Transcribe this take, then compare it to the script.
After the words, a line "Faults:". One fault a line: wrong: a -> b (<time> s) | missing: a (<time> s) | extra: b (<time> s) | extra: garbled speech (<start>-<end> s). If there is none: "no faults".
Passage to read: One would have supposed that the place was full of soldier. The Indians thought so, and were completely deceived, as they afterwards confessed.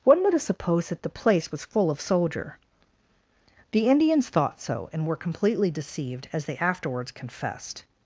One would have supposed that the place was full of soldier. The Indians thought so, and were completely deceived, as they afterwards confessed.
Faults:
no faults